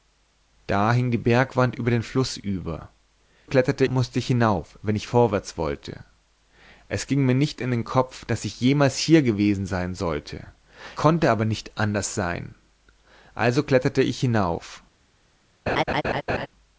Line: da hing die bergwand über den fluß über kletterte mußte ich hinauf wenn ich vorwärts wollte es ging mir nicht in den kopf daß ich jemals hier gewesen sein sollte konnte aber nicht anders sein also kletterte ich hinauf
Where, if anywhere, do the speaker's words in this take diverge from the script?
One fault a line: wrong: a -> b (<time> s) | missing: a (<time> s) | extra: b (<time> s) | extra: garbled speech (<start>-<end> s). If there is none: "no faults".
no faults